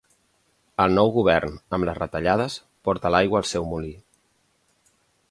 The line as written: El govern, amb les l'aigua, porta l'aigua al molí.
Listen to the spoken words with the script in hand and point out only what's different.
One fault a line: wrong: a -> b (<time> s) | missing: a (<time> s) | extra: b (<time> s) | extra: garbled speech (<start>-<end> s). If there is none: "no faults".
extra: nou (1.0 s)
wrong: l'aigua -> retallades (2.0 s)
extra: seu (3.5 s)